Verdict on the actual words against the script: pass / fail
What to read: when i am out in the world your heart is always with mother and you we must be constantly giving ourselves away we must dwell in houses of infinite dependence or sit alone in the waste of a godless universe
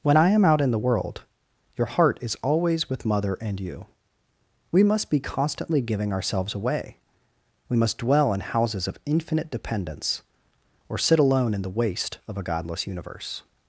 pass